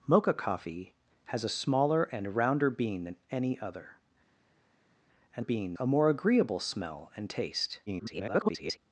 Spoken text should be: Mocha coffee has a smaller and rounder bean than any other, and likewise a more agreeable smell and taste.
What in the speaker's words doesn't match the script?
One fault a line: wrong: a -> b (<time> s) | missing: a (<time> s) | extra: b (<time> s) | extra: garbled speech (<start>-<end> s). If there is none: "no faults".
wrong: likewise -> bean (5.4 s)
extra: garbled speech (7.9-8.8 s)